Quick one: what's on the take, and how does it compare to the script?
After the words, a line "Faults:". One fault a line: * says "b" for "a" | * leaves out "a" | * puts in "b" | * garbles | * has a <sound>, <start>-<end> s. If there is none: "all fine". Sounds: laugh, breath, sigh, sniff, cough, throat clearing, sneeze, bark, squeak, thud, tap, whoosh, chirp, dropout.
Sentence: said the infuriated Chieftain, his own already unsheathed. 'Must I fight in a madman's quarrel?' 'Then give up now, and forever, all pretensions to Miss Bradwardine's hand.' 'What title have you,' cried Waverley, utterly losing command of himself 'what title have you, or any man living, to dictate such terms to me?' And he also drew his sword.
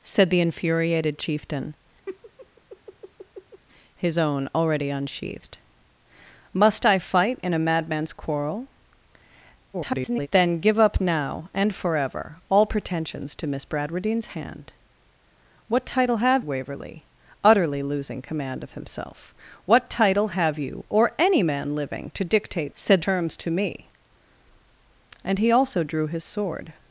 said the infuriated Chieftain, his own already unsheathed. 'Must I fight in a madman's quarrel?' [garbled] 'Then give up now, and forever, all pretensions to Miss Bradwardine's hand.' 'What title have Waverley, utterly losing command of himself 'what title have you, or any man living, to dictate said terms to me?' And he also drew his sword.
Faults:
* has a laugh, 2.1-3.6 s
* garbles
* leaves out "you cried"
* says "said" for "such"